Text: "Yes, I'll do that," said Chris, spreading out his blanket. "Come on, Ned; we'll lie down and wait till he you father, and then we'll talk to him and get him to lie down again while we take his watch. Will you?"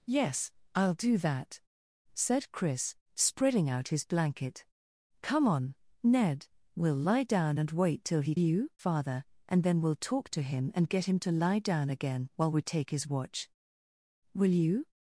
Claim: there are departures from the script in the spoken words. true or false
false